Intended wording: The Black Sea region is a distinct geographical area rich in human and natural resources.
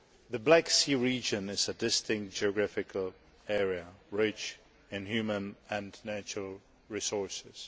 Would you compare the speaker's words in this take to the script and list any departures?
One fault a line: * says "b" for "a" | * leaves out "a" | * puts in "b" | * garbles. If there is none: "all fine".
all fine